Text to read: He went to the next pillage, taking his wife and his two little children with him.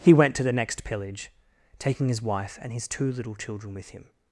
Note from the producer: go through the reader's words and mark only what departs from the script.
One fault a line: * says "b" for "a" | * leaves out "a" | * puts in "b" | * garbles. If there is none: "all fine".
all fine